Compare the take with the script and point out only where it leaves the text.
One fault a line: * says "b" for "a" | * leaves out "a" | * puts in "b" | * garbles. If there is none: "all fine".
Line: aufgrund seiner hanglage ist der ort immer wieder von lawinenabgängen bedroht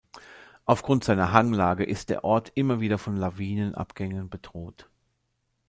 all fine